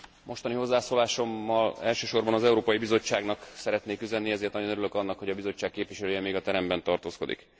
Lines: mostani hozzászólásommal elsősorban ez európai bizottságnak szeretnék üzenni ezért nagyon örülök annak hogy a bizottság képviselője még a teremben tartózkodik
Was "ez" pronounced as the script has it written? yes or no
no